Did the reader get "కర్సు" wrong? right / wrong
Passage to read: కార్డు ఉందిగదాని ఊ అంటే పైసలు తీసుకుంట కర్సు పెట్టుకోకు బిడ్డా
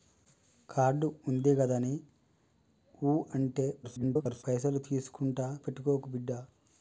wrong